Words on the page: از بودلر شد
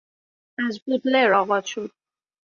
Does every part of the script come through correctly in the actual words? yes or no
no